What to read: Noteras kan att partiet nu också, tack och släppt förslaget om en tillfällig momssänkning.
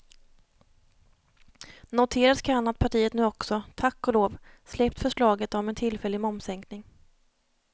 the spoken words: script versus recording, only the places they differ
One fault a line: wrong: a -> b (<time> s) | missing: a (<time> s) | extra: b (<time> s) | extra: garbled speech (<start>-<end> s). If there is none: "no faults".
extra: lov (4.1 s)